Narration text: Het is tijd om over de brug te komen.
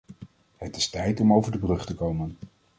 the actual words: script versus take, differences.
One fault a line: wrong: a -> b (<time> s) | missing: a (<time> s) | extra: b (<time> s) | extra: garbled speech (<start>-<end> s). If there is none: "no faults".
no faults